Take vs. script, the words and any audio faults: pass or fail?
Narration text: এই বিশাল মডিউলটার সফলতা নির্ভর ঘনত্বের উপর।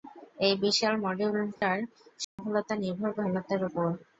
fail